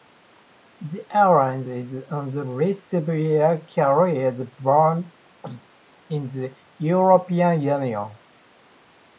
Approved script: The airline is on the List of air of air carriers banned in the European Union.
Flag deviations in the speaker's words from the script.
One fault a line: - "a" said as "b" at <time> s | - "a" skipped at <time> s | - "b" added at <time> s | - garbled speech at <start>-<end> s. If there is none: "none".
- "of air" skipped at 3.6 s